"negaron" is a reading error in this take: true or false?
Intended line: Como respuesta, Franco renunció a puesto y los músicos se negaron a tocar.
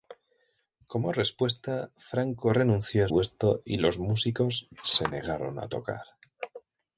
false